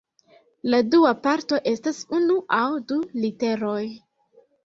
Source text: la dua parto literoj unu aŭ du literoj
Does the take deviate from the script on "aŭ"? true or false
false